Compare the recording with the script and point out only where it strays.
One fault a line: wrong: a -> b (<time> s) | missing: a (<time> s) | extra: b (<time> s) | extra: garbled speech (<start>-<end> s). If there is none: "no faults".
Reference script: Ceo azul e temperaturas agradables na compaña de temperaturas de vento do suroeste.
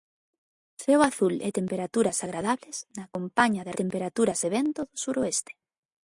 no faults